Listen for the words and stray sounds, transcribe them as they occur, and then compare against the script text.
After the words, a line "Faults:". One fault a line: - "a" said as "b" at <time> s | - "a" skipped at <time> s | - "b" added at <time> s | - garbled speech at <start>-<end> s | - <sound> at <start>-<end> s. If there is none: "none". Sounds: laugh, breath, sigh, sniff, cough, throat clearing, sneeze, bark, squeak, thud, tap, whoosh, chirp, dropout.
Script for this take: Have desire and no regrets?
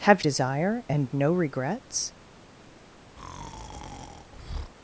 Have desire and no regrets?
Faults:
- breath at 3.2-4.7 s